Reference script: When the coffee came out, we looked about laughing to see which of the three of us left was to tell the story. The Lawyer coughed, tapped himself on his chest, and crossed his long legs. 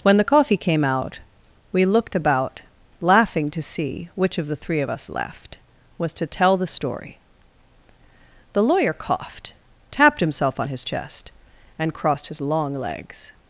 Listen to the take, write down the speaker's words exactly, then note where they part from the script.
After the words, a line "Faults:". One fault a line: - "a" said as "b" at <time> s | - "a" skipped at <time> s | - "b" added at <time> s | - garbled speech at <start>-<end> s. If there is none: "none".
When the coffee came out, we looked about laughing to see which of the three of us left was to tell the story. The Lawyer coughed, tapped himself on his chest, and crossed his long legs.
Faults:
none